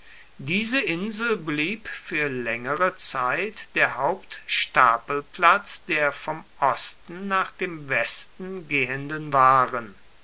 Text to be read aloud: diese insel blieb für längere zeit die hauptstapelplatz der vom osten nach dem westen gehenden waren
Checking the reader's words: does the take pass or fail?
fail